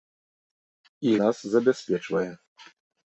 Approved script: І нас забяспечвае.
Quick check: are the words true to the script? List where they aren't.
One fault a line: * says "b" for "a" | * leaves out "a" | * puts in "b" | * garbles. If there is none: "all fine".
all fine